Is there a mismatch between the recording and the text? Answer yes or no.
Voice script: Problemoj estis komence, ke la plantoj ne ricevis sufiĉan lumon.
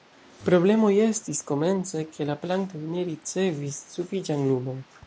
no